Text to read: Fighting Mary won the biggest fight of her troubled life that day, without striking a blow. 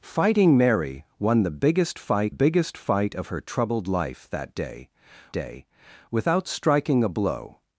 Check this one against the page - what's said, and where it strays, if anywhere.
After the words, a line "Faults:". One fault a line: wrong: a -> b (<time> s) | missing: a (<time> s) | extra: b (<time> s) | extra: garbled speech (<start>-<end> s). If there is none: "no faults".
Fighting Mary won the biggest fight biggest fight of her troubled life that day day, without striking a blow.
Faults:
extra: biggest fight (2.3 s)
extra: day (5.3 s)